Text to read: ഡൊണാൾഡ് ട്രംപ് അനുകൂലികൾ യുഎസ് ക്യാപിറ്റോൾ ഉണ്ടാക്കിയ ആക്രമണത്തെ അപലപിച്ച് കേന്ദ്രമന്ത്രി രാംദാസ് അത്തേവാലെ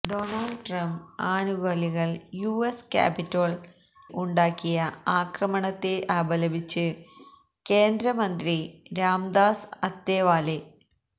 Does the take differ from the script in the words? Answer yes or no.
no